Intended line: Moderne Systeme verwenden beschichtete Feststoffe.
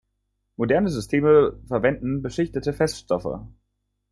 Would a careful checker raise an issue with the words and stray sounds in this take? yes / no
no